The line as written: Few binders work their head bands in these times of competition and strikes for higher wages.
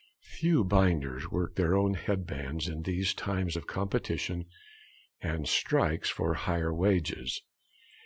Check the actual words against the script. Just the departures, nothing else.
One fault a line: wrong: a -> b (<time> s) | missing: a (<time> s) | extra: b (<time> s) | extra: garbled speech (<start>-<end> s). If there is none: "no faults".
extra: own (1.7 s)